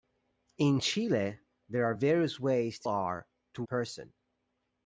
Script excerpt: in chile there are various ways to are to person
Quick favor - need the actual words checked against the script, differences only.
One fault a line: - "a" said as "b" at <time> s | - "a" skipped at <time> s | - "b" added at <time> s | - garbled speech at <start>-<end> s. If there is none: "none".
none